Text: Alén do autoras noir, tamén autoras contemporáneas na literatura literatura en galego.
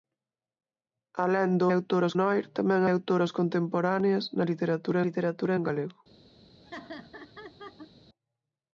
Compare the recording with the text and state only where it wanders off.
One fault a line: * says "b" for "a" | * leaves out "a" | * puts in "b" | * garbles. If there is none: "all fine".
all fine